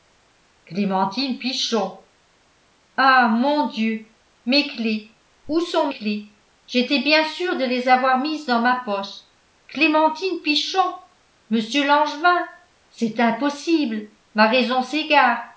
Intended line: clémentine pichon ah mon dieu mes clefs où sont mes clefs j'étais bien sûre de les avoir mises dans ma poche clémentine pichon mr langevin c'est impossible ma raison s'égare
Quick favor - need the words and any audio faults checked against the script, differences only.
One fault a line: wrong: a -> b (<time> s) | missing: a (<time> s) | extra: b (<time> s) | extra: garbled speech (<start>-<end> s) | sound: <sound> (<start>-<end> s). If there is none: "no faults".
missing: mes (5.9 s)